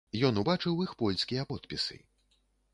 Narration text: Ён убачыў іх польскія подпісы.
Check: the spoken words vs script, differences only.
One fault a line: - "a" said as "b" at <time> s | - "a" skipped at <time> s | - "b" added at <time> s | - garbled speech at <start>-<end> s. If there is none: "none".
none